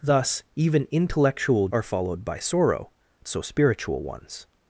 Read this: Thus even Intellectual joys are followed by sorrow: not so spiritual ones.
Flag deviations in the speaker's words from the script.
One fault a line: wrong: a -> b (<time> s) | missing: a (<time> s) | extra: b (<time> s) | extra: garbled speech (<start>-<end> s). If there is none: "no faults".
missing: joys (1.7 s)
missing: not (2.9 s)